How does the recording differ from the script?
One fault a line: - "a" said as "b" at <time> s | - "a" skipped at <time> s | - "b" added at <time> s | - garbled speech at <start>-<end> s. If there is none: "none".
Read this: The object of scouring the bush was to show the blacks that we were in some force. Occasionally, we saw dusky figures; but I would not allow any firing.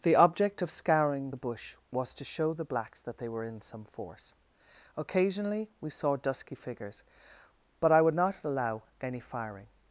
- "we" said as "they" at 3.2 s